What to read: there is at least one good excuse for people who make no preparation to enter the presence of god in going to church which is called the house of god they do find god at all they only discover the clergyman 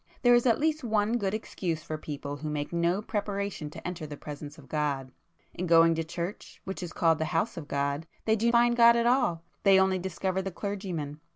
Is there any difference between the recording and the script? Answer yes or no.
no